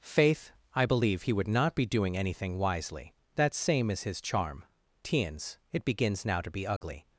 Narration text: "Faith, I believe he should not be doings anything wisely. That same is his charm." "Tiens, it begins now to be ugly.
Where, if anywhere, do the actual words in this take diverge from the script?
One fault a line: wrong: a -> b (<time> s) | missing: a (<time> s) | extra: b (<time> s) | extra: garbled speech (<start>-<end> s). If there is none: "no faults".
wrong: should -> would (1.3 s)
wrong: doings -> doing (1.9 s)